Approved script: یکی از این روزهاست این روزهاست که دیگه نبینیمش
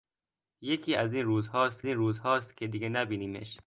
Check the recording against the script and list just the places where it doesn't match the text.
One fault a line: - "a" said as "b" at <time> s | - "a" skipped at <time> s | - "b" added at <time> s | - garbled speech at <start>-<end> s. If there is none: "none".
none